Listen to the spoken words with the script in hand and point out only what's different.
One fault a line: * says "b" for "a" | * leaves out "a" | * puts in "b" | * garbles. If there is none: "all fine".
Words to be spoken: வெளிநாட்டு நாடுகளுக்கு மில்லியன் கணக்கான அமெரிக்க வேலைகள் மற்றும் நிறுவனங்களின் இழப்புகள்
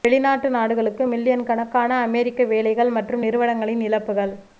all fine